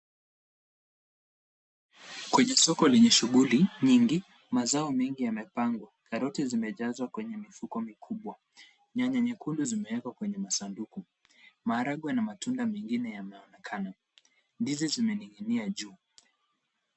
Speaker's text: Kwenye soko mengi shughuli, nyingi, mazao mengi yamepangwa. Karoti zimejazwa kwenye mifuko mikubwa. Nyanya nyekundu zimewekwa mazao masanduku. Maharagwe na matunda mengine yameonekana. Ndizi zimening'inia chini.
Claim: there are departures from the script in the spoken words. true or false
true